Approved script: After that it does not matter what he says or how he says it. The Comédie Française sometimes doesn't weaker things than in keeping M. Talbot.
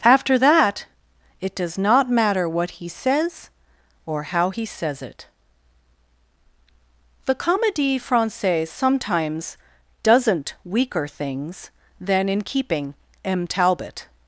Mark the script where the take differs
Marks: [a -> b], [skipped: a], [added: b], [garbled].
After that it does not matter what he says or how he says it. The Comédie Française sometimes doesn't weaker things than in keeping M. Talbot.